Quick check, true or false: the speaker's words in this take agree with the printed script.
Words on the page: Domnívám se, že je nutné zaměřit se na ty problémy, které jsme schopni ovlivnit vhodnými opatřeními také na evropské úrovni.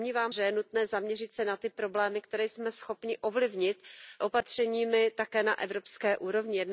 false